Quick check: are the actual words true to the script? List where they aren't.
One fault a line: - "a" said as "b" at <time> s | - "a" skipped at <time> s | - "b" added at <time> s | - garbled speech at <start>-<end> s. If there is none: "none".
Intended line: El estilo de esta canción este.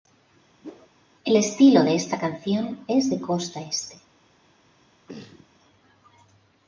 - "es de costa" added at 2.9 s